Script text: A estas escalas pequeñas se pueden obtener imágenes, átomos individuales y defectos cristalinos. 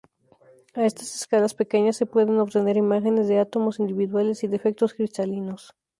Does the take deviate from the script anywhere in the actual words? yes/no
yes